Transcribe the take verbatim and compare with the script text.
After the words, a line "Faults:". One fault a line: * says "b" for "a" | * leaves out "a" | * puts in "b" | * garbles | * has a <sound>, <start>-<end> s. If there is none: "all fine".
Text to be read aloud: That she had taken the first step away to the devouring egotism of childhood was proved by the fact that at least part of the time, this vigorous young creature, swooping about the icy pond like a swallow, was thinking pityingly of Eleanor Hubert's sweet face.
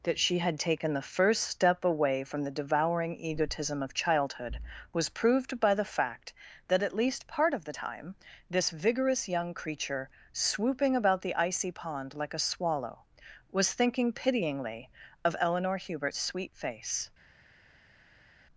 That she had taken the first step away from the devouring egotism of childhood was proved by the fact that at least part of the time, this vigorous young creature, swooping about the icy pond like a swallow, was thinking pityingly of Eleanor Hubert's sweet face.
Faults:
* says "from" for "to"